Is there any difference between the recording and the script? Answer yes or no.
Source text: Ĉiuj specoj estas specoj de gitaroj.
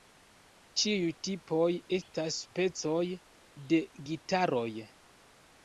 yes